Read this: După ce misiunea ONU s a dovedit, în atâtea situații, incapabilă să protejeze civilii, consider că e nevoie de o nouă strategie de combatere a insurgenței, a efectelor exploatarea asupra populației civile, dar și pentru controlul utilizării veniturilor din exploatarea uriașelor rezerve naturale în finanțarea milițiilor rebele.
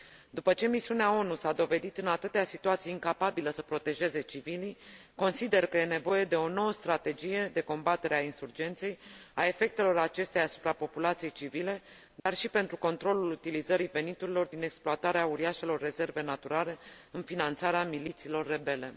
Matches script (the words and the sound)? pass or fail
fail